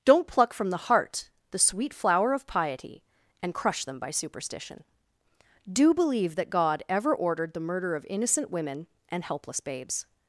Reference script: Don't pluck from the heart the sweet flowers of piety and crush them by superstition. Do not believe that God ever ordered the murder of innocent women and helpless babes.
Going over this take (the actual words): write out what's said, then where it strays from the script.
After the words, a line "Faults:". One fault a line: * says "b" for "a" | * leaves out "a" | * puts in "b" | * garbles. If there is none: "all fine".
Don't pluck from the heart the sweet flower of piety and crush them by superstition. Do believe that God ever ordered the murder of innocent women and helpless babes.
Faults:
* says "flower" for "flowers"
* leaves out "not"